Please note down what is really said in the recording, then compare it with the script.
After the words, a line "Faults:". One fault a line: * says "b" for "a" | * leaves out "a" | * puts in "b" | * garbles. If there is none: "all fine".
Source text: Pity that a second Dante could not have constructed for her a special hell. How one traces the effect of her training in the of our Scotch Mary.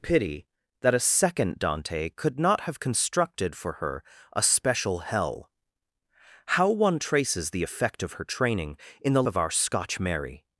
Pity that a second Dante could not have constructed for her a special hell. How one traces the effect of her training in the of our Scotch Mary.
Faults:
all fine